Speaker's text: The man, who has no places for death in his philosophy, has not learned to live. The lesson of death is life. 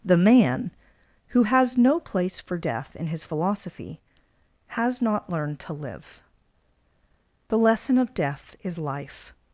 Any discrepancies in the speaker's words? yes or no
yes